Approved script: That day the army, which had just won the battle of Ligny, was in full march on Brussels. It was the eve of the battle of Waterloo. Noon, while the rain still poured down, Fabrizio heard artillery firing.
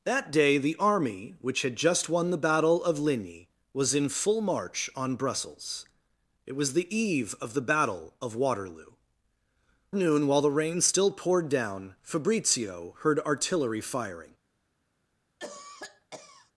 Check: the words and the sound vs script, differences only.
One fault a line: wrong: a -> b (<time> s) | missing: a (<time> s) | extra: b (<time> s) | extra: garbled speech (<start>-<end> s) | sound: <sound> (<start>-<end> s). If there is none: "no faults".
sound: cough (15.4-16.5 s)